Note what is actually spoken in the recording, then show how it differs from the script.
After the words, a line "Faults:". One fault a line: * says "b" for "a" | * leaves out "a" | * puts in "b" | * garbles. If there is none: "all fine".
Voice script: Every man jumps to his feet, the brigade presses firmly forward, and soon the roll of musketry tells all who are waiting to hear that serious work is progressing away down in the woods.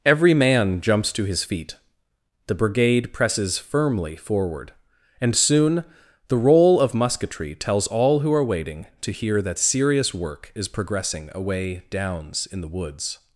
Every man jumps to his feet, the brigade presses firmly forward, and soon the roll of musketry tells all who are waiting to hear that serious work is progressing away downs in the woods.
Faults:
* says "downs" for "down"